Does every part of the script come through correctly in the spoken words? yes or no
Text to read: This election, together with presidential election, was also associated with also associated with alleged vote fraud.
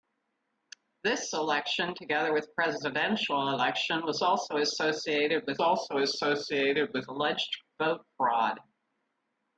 yes